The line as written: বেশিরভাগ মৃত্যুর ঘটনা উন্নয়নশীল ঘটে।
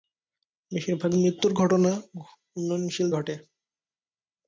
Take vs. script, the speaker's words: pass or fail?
pass